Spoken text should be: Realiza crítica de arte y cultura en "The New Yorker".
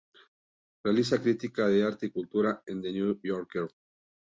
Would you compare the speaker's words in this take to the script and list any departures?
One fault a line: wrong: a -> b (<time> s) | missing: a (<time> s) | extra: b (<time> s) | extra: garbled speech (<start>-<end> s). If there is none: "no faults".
no faults